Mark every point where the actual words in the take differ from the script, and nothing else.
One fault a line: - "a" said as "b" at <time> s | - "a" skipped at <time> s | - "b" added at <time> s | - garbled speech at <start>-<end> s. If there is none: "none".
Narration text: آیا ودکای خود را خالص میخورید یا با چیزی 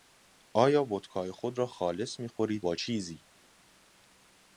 - "یا" skipped at 2.6 s